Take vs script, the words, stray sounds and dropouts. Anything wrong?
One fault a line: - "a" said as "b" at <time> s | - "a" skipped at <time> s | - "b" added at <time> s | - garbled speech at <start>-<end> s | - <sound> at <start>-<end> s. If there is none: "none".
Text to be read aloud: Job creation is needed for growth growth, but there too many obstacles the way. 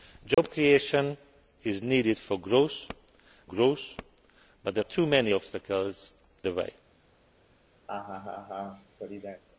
- dropout at 0.3-0.4 s
- laugh at 7.9-9.4 s